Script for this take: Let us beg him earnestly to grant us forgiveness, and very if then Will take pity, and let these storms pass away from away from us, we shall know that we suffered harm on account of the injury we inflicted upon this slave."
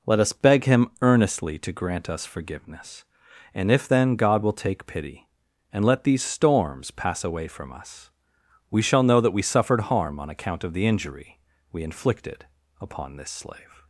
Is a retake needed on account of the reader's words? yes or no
yes